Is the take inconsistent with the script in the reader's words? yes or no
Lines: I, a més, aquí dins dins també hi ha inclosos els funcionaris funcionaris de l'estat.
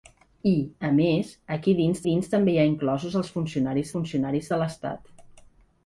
no